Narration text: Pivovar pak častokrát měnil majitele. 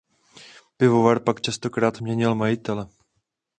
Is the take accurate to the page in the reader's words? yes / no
yes